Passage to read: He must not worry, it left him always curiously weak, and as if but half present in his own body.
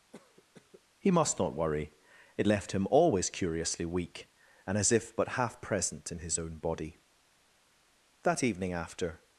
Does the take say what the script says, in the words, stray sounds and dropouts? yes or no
no